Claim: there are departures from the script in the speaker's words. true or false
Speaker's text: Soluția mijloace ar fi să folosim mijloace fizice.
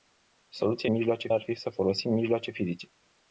false